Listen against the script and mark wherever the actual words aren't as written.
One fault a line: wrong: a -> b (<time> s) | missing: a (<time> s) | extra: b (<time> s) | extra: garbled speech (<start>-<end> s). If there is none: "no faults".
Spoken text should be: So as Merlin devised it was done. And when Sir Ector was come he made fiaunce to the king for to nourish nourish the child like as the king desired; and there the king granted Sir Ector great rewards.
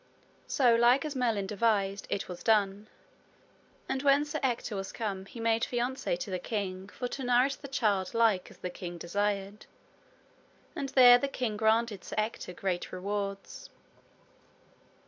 extra: like (0.7 s)
missing: nourish (7.6 s)